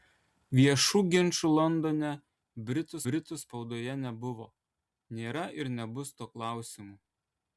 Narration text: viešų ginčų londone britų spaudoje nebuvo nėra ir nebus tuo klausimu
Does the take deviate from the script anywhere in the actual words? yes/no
yes